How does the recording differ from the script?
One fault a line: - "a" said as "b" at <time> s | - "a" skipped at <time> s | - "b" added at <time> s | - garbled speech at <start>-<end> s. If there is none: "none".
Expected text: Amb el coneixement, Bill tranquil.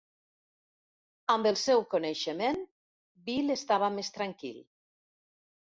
- "seu" added at 1.6 s
- "estava més" added at 3.6 s